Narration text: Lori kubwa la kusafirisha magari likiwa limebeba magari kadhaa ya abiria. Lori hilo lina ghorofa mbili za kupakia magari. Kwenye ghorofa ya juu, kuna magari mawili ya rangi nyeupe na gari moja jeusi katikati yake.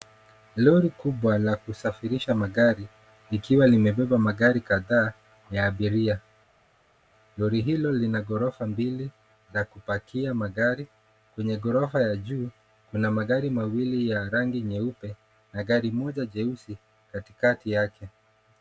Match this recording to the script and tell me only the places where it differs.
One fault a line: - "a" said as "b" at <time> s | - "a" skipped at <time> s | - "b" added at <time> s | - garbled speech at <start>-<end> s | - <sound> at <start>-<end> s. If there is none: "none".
none